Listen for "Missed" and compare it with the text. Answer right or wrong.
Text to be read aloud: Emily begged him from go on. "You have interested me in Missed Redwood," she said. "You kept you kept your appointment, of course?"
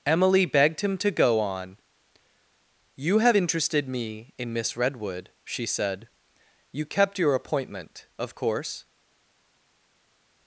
wrong